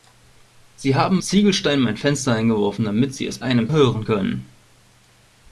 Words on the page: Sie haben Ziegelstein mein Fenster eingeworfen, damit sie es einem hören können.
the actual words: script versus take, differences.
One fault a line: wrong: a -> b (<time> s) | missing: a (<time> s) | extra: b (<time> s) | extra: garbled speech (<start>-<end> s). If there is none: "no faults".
no faults